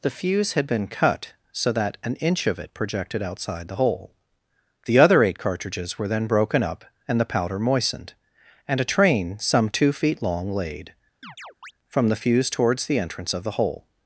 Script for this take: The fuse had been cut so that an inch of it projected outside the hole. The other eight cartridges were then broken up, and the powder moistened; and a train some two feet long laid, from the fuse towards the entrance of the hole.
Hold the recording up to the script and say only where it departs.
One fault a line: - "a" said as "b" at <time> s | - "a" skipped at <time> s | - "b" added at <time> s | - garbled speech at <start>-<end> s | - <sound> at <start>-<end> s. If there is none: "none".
- chirp at 11.2-11.7 s